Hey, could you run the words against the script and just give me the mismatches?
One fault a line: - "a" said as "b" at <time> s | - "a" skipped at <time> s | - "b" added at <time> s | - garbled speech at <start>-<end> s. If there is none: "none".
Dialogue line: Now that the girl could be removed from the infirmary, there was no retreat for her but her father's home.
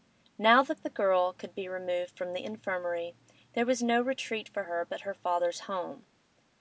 none